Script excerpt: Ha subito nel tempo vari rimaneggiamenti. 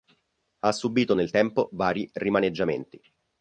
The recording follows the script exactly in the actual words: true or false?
true